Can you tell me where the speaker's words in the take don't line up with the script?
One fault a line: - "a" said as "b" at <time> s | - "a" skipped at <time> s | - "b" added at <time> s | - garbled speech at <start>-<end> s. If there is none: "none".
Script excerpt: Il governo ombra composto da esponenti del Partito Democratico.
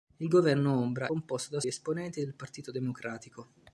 none